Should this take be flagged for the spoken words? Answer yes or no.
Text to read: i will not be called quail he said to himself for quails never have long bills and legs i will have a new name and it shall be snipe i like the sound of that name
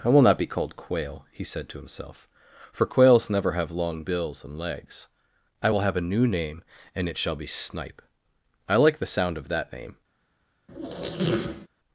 no